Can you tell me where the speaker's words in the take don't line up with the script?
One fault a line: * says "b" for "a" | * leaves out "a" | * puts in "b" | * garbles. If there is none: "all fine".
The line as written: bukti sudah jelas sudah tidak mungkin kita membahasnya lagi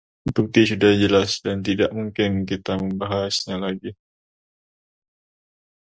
* says "dan" for "sudah"